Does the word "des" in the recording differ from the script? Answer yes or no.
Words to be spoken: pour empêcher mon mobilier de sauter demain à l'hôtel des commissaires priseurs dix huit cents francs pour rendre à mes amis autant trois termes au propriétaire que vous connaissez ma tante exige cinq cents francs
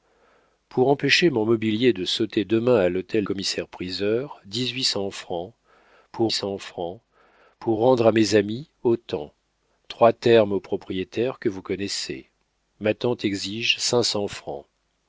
yes